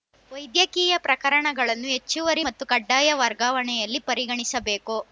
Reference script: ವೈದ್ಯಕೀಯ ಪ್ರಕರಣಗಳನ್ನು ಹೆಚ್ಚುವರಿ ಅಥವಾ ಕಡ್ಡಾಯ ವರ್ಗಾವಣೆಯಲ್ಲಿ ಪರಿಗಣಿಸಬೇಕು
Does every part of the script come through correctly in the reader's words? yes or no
no